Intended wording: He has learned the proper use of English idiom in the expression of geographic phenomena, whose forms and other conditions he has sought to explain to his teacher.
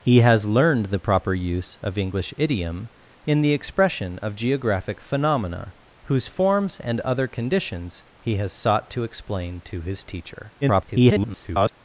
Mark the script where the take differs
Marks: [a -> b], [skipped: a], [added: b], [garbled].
He has learned the proper use of English idiom in the expression of geographic phenomena, whose forms and other conditions he has sought to explain to his teacher. [garbled]